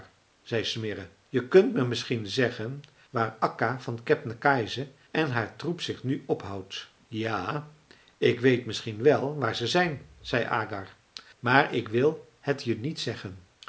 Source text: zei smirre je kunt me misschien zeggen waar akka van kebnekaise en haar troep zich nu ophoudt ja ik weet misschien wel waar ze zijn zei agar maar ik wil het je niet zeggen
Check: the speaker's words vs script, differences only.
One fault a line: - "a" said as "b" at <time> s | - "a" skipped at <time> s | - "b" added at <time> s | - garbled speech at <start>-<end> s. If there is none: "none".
none